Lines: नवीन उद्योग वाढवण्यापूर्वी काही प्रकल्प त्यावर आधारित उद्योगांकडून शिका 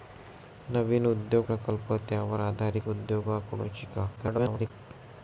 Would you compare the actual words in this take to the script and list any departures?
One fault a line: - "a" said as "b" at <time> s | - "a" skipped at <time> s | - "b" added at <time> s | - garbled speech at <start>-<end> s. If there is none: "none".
- "वाढवण्यापूर्वी काही" skipped at 1.5 s
- garbled speech at 4.2-4.7 s